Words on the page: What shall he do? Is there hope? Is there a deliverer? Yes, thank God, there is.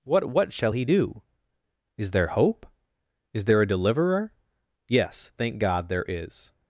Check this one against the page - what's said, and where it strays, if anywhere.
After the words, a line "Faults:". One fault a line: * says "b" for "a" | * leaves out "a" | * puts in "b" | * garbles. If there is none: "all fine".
What what shall he do? Is there hope? Is there a deliverer? Yes, thank God, there is.
Faults:
* puts in "what"